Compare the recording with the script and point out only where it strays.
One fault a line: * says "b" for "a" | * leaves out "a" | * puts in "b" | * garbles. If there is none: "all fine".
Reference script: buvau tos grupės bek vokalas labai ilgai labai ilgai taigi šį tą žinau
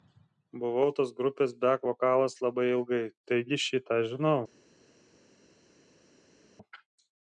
* leaves out "labai ilgai"